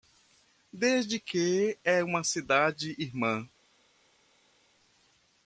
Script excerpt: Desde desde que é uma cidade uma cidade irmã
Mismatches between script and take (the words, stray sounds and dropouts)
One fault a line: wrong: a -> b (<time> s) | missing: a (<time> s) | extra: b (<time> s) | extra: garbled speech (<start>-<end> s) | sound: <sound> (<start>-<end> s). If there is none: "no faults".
missing: desde (1.2 s)
missing: uma cidade (2.9 s)